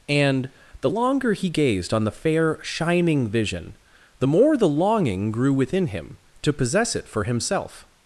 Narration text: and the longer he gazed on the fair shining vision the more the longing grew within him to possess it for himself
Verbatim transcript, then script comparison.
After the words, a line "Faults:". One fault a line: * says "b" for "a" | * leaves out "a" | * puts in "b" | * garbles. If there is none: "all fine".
and the longer he gazed on the fair shining vision the more the longing grew within him to possess it for himself
Faults:
all fine